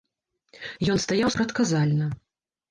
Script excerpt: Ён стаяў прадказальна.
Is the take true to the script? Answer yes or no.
yes